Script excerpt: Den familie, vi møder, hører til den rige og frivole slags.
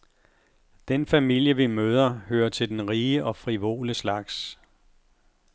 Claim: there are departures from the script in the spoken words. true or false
false